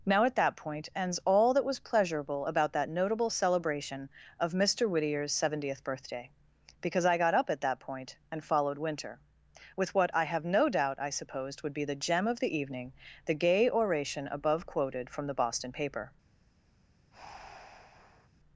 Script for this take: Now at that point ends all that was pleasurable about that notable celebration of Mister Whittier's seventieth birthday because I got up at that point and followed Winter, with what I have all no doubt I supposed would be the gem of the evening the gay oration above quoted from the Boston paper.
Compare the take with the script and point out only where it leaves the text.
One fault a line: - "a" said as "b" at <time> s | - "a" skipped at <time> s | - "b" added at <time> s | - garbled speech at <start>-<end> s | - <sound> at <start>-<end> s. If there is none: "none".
- "all" skipped at 10.4 s
- breath at 17.1-18.3 s